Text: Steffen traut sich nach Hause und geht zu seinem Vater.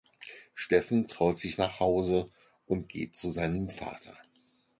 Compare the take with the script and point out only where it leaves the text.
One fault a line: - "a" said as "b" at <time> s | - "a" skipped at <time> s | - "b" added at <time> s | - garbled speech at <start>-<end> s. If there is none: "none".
none